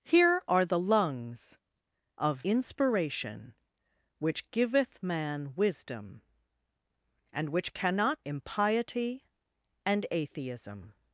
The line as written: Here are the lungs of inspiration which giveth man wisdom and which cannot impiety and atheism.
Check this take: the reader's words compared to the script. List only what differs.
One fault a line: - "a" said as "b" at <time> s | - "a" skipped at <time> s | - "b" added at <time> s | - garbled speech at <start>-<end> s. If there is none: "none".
none